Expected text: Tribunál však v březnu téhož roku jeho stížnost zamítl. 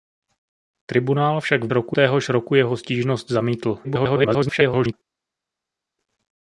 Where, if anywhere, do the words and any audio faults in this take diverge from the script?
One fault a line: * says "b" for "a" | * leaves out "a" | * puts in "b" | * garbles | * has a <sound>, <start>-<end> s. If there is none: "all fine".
* says "roku" for "březnu"
* garbles